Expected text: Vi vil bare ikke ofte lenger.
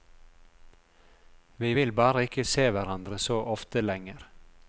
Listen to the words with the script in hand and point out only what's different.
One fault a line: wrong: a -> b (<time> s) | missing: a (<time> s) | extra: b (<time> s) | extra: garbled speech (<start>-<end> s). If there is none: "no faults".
extra: se hverandre så (2.4 s)